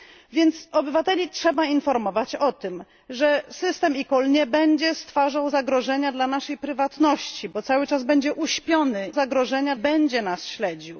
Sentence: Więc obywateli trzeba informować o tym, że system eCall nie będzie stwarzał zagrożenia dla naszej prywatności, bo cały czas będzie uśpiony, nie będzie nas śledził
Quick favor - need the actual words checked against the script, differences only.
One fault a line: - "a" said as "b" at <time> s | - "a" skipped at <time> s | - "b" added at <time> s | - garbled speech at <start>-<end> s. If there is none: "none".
- "nie" said as "zagrożenia" at 9.1 s